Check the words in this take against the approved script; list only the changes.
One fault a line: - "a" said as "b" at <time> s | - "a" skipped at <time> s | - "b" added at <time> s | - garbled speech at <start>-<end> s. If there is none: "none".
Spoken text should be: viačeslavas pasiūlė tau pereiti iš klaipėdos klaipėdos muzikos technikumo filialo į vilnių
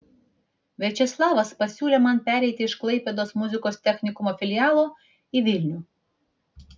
- "tau" said as "man" at 2.0 s
- "klaipėdos" skipped at 3.4 s